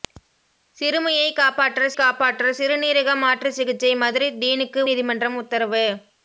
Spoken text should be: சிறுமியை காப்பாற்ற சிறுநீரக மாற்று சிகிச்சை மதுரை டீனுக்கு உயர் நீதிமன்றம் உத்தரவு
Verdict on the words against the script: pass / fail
fail